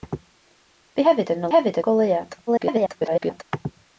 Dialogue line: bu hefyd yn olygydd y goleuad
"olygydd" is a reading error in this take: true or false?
true